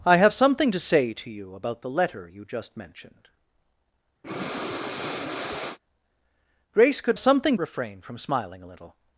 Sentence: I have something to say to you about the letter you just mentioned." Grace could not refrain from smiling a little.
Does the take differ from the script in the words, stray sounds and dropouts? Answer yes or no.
yes